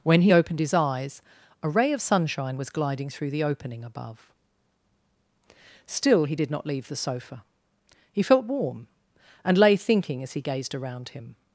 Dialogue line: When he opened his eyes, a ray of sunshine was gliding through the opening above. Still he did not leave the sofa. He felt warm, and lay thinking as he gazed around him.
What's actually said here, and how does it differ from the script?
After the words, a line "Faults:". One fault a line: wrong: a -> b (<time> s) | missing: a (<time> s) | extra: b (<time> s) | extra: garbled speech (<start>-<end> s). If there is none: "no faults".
When he opened his eyes, a ray of sunshine was gliding through the opening above. Still he did not leave the sofa. He felt warm, and lay thinking as he gazed around him.
Faults:
no faults